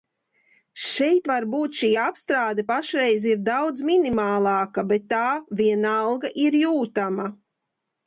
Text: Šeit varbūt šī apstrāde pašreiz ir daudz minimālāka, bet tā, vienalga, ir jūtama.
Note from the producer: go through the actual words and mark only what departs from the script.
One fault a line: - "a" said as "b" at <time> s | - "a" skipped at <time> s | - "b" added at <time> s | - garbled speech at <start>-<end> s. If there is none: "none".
none